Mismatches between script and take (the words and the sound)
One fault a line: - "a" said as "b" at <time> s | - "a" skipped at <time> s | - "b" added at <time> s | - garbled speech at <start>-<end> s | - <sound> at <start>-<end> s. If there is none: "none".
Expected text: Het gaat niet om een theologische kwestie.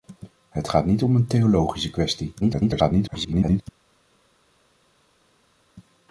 - garbled speech at 2.4-3.6 s